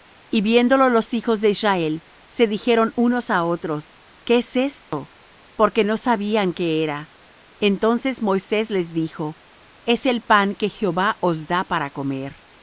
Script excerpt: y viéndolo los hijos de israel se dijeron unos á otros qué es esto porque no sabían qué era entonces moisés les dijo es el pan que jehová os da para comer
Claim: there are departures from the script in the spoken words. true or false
false